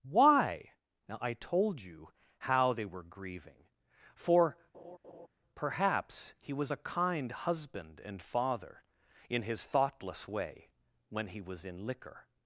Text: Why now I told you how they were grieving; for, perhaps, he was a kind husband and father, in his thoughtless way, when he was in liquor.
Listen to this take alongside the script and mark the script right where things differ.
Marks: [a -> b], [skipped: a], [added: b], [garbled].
Why now I told you how they were grieving; for, perhaps, he was a kind husband and father, in his thoughtless way, when he was in liquor.